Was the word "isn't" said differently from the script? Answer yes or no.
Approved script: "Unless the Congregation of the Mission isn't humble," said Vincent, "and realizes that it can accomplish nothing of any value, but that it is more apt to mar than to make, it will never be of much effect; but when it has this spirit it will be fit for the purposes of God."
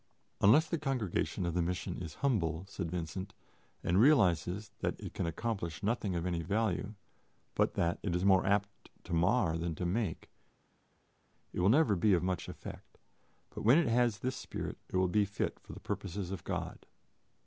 yes